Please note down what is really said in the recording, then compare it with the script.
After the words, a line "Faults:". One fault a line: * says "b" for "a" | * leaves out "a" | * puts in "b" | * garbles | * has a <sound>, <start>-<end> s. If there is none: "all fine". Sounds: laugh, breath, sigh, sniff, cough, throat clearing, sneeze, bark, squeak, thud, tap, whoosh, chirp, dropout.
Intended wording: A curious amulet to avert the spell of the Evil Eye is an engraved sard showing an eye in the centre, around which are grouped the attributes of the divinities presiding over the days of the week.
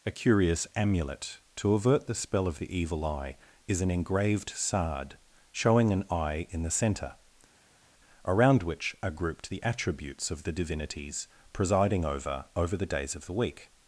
A curious amulet to avert the spell of the Evil Eye is an engraved sard showing an eye in the centre, around which are grouped the attributes of the divinities presiding over over the days of the week.
Faults:
* puts in "over"